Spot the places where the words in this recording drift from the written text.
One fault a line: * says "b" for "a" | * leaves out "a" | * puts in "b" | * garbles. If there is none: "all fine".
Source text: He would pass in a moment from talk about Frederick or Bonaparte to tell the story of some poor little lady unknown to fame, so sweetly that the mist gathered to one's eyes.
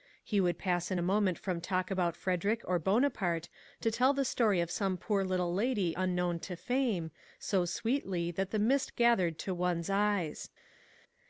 all fine